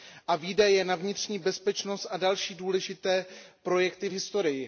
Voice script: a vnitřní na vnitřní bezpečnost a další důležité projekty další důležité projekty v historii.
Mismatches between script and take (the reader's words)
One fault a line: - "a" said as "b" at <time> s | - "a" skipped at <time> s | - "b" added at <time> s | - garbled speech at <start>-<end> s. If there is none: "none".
- "vnitřní" said as "výdaje" at 0.3 s
- "další důležité projekty" skipped at 4.1 s